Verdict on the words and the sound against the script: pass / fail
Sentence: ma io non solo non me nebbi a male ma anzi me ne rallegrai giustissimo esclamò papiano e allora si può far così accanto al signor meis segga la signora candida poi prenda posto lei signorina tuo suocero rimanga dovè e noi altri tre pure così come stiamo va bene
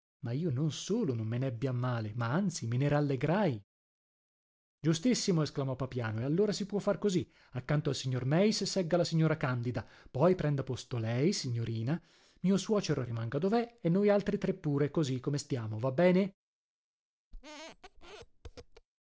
fail